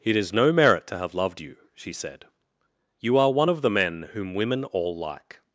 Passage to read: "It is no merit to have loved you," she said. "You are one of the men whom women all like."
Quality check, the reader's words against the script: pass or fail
pass